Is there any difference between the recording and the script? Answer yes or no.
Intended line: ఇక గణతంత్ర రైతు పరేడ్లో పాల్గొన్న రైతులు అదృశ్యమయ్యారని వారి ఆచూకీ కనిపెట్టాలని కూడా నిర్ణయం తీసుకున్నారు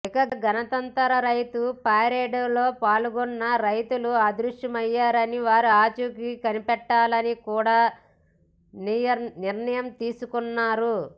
no